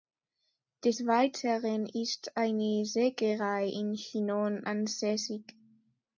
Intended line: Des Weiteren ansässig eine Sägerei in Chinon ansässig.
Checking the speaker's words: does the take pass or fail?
fail